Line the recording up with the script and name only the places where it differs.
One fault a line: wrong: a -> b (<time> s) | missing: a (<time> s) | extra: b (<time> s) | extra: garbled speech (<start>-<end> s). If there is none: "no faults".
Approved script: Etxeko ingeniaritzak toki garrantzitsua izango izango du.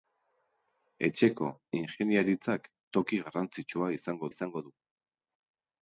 no faults